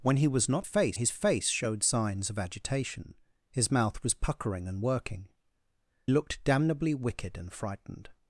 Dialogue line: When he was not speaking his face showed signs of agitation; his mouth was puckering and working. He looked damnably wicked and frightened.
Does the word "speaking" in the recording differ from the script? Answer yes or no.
yes